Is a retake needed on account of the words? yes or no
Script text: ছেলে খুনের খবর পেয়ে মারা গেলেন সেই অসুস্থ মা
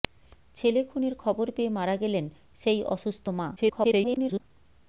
yes